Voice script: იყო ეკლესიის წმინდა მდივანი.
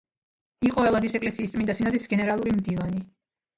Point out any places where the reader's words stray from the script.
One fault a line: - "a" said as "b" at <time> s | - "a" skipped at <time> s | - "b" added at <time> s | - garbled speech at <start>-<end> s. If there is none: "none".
- "ელადის" added at 0.9 s
- "სინოდის გენერალური" added at 1.8 s